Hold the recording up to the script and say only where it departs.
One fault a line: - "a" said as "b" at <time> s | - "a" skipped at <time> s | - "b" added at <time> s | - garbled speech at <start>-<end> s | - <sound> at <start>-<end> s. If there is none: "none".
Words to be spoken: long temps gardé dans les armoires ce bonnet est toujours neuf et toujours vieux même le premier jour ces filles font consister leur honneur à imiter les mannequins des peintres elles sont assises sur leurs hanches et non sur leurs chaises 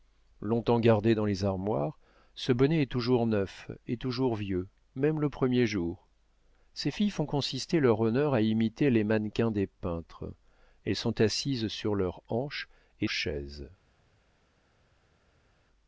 - "non sur leurs" skipped at 13.1 s